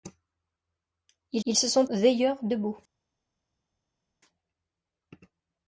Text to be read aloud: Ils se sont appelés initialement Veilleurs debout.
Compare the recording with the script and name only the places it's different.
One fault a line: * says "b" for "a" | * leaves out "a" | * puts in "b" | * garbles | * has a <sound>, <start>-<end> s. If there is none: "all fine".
* puts in "ils"
* leaves out "appelés initialement"